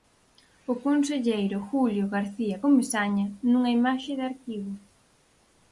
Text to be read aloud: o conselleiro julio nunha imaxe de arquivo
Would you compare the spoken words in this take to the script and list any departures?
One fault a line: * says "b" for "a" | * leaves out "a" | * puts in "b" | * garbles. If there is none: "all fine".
* puts in "garcía comesaña"